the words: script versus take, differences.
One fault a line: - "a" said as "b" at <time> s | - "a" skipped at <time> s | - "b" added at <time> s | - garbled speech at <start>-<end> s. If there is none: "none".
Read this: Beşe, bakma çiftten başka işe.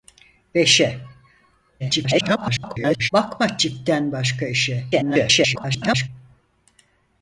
- garbled speech at 1.8-3.1 s
- garbled speech at 4.9-6.1 s